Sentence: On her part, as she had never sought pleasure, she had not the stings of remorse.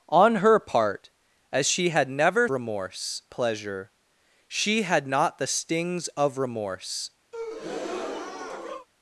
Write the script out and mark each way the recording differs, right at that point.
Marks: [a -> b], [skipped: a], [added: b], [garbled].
On her part, as she had never [sought -> remorse] pleasure, she had not the stings of remorse.